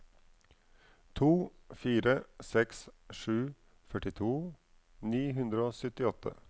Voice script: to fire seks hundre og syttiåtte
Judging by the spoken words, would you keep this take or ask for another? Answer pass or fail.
fail